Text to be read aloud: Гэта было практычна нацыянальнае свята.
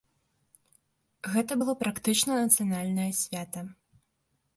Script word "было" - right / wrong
right